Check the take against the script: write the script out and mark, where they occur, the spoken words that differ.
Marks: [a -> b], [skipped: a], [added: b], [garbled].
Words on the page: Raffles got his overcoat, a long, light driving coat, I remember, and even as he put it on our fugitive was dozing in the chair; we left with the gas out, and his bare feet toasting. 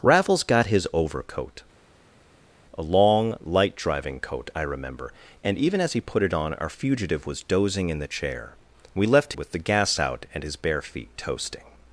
Raffles got his overcoat, a long, light driving coat, I remember, and even as he put it on our fugitive was dozing in the chair; we left with the gas out, and his bare feet toasting.